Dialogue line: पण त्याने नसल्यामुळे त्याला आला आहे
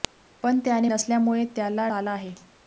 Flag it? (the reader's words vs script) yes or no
no